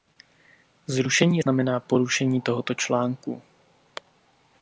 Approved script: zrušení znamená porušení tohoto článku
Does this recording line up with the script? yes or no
yes